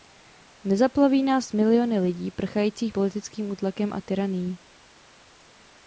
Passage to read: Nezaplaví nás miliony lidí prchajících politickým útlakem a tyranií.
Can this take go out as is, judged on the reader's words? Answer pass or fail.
pass